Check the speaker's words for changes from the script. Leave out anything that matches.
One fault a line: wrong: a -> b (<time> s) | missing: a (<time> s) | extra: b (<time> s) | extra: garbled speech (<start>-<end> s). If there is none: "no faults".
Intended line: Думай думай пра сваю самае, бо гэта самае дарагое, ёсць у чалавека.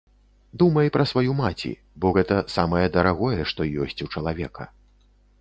missing: думай (0.9 s)
wrong: самае -> маці (1.4 s)
extra: што (3.5 s)